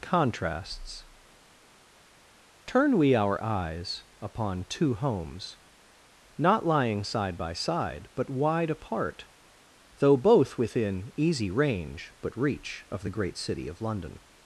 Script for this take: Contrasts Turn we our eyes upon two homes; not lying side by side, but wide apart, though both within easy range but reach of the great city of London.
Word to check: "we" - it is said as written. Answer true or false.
true